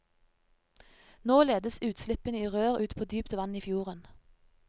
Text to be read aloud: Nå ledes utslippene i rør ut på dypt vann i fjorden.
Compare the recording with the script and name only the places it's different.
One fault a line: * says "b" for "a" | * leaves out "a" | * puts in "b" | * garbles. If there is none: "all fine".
all fine